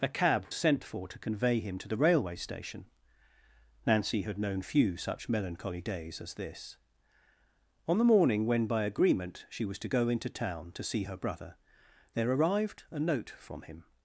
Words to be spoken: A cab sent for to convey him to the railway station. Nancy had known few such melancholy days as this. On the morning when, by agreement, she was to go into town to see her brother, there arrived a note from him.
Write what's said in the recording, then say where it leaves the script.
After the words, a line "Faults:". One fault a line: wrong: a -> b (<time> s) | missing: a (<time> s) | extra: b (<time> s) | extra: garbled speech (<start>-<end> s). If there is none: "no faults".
A cab sent for to convey him to the railway station. Nancy had known few such melancholy days as this. On the morning when, by agreement, she was to go into town to see her brother, there arrived a note from him.
Faults:
no faults